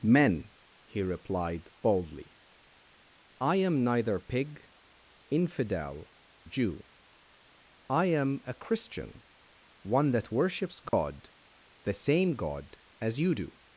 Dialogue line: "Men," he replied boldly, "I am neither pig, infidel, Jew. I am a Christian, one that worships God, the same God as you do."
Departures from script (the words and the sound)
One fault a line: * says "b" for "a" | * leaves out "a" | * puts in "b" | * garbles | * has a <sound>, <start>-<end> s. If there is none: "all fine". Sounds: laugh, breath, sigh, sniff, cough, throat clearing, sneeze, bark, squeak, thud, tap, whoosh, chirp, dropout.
* has a dropout, 10.9-10.9 s